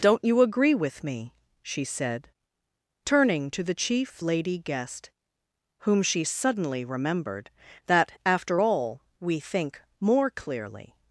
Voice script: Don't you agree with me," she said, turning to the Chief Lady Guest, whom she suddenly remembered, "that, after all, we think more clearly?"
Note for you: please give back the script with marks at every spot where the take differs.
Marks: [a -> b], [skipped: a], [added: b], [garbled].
Don't you agree with me," she said, turning to the Chief Lady Guest, whom she suddenly remembered, "that, after all, we think more clearly?"